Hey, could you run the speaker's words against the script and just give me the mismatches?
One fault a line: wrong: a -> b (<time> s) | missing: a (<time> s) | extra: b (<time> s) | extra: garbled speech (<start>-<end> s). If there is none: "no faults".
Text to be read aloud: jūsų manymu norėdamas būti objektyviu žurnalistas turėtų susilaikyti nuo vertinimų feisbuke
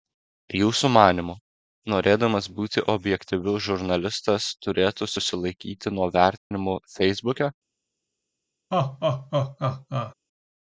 no faults